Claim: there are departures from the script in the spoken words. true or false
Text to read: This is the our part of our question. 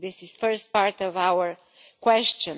true